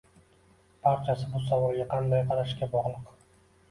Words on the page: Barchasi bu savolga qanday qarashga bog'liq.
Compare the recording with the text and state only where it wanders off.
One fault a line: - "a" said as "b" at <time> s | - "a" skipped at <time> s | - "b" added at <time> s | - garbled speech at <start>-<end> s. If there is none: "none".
none